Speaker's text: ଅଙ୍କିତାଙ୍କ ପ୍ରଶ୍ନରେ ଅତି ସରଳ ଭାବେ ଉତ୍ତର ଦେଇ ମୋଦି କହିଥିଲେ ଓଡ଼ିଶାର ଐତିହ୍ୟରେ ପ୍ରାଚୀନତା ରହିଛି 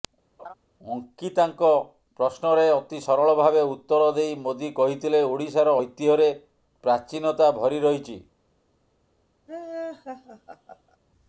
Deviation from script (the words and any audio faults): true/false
true